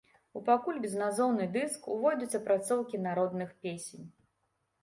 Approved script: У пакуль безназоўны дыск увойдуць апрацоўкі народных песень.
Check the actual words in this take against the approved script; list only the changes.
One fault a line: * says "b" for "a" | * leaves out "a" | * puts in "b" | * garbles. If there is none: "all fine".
all fine